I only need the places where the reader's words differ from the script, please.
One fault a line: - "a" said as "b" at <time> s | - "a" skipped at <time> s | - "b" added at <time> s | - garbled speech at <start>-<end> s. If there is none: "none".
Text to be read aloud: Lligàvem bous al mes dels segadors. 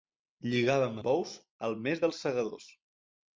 none